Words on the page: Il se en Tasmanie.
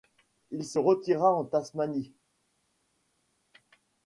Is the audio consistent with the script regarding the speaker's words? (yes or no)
no